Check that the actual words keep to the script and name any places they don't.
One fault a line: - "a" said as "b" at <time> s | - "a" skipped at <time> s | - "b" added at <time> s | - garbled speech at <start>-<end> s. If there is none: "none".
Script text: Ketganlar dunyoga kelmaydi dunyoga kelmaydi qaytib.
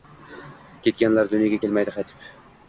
- "dunyoga kelmaydi" skipped at 2.0 s